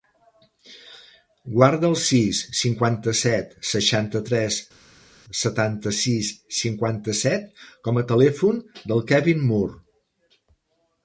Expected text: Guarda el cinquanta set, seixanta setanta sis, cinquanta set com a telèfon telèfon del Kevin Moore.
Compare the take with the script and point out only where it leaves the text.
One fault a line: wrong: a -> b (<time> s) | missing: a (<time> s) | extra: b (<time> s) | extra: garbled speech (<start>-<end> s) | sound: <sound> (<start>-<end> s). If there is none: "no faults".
extra: sis (2.0 s)
extra: tres (4.3 s)
missing: telèfon (8.6 s)